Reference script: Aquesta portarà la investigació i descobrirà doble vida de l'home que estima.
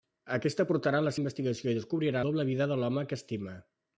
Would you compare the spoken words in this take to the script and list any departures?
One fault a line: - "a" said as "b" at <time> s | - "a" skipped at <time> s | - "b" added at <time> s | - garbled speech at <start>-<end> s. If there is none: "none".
none